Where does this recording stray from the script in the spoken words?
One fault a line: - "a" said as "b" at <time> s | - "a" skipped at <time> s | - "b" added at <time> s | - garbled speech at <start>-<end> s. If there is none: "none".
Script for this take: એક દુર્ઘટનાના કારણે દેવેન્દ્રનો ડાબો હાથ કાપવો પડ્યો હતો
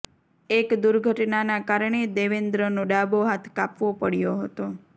none